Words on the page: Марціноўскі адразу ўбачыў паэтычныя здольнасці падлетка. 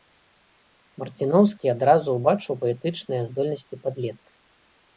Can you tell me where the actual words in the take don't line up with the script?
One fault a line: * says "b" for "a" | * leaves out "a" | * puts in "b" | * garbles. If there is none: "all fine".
all fine